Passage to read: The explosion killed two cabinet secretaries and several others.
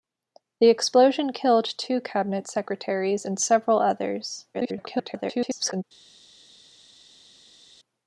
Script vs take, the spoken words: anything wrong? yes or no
yes